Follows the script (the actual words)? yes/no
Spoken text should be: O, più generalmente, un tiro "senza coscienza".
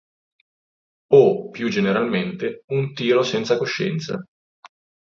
yes